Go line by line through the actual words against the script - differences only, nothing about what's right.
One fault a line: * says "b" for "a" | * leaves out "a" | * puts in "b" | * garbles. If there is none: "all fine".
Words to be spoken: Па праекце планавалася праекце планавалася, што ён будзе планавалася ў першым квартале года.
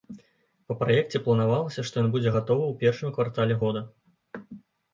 * leaves out "праекце планавалася"
* says "гатовы" for "планавалася"